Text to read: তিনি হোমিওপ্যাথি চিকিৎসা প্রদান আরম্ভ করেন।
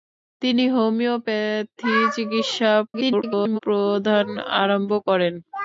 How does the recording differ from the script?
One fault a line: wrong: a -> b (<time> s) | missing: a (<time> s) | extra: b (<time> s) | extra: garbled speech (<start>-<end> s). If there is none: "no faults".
extra: garbled speech (2.9-3.6 s)